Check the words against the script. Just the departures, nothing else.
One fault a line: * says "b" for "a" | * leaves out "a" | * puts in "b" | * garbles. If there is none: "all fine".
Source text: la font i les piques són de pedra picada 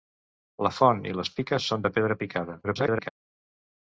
* garbles